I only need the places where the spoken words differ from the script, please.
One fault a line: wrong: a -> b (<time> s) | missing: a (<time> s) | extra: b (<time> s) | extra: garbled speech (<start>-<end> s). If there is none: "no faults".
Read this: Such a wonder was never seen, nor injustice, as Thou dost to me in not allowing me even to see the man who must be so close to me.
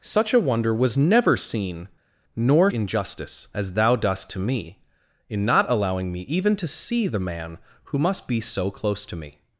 no faults